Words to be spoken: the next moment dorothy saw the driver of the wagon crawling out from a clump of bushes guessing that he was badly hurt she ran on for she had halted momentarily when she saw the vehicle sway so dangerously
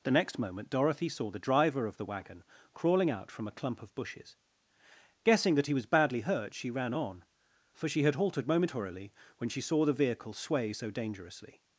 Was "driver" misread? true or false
false